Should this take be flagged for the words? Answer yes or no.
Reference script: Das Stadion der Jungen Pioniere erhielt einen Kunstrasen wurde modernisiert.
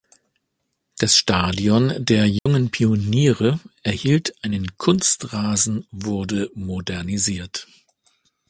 no